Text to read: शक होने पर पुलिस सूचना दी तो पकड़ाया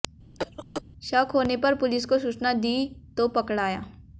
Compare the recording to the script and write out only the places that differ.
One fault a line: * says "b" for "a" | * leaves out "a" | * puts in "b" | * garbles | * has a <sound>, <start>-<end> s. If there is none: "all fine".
* has a cough, 0.4-0.8 s
* puts in "को"